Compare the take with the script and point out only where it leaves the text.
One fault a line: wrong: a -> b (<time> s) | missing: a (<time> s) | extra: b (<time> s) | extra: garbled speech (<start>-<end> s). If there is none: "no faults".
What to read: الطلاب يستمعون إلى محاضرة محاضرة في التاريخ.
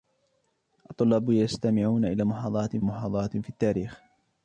no faults